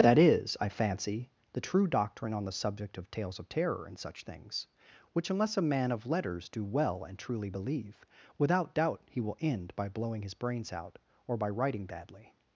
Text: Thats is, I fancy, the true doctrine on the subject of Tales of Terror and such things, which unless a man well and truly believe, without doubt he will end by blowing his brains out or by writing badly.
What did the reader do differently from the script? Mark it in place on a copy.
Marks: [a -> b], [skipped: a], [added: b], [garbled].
[Thats -> That] is, I fancy, the true doctrine on the subject of Tales of Terror and such things, which unless a man [added: of letters do] well and truly believe, without doubt he will end by blowing his brains out or by writing badly.